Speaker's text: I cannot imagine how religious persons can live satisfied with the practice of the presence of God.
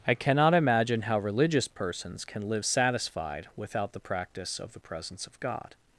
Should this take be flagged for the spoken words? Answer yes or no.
yes